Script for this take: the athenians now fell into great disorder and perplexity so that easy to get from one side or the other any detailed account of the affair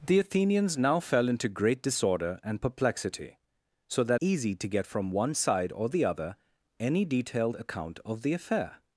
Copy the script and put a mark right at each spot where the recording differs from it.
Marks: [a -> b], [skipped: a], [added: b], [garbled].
the athenians now fell into great disorder and perplexity so that easy to get from one side or the other any detailed account of the affair